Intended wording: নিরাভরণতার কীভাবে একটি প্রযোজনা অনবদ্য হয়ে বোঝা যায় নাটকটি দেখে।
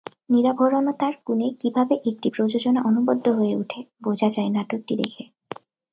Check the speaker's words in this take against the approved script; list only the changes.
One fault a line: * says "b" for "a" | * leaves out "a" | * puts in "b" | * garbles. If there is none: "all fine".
* puts in "গুণে"
* puts in "ওঠে"